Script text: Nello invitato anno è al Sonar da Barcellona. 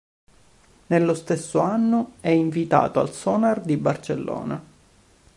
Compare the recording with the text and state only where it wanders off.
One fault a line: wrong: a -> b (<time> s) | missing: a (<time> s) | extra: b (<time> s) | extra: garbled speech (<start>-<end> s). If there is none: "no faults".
wrong: invitato -> stesso (1.1 s)
extra: invitato (2.3 s)
wrong: da -> di (3.6 s)